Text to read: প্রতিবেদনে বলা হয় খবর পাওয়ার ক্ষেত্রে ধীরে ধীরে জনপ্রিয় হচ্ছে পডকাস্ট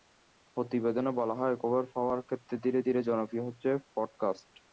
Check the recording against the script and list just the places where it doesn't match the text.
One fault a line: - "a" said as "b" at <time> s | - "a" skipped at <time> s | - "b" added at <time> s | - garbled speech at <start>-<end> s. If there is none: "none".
none